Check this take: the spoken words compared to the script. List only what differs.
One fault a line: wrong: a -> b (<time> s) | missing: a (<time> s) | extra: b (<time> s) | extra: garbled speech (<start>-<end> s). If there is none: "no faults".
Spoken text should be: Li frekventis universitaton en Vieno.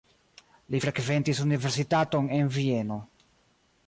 no faults